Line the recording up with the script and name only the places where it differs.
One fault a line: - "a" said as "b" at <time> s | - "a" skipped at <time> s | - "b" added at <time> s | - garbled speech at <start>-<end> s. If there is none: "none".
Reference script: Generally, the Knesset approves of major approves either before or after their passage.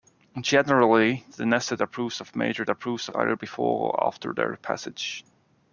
none